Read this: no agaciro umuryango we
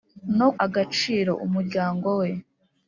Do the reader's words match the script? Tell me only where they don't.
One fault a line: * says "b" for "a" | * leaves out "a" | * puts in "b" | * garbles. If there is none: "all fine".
all fine